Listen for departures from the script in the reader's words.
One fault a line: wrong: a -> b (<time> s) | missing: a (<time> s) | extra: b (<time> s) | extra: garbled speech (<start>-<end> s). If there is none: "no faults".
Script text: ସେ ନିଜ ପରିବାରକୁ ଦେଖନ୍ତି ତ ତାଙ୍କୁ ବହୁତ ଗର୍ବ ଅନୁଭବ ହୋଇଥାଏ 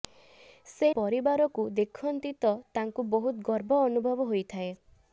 missing: ନିଜ (0.9 s)